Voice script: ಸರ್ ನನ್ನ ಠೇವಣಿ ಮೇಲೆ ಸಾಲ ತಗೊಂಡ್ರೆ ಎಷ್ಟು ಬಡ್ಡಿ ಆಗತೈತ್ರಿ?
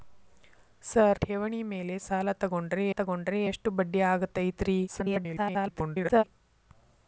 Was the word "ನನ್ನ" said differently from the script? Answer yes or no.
yes